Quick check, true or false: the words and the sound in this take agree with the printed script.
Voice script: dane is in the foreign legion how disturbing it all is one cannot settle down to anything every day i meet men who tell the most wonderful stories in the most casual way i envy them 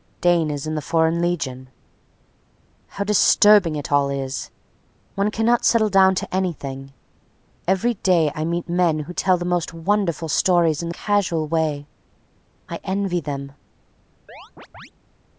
false